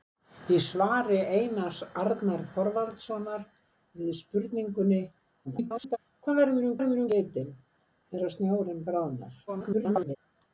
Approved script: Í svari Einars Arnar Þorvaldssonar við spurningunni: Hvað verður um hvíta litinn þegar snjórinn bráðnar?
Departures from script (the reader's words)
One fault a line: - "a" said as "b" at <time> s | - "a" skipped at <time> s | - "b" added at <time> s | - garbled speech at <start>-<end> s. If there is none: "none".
- garbled speech at 5.4-6.0 s
- "hvíta" said as "verður" at 6.8 s
- garbled speech at 9.5-10.2 s